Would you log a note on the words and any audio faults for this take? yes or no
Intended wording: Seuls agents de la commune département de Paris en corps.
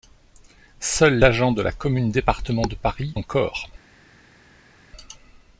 no